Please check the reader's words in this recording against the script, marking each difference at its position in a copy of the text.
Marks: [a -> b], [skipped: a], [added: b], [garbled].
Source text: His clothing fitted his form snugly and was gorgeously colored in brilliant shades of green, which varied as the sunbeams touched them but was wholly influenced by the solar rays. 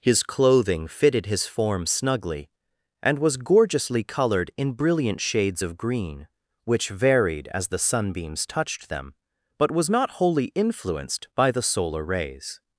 His clothing fitted his form snugly and was gorgeously colored in brilliant shades of green, which varied as the sunbeams touched them but was [added: not] wholly influenced by the solar rays.